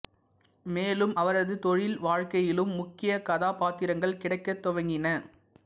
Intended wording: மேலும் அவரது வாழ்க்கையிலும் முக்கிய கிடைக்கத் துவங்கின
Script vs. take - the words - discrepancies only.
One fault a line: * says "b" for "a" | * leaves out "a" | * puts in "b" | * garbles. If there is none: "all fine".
* puts in "தொழில்"
* puts in "கதாபாத்திரங்கள்"